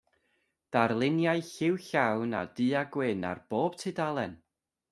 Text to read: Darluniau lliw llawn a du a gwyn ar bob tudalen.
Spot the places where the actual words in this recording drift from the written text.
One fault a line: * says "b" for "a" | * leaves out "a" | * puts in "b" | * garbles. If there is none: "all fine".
all fine